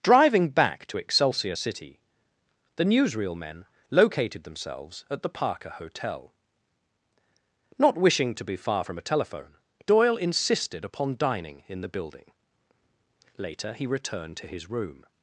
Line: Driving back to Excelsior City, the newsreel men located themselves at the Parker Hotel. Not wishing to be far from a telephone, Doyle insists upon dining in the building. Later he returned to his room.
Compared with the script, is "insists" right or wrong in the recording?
wrong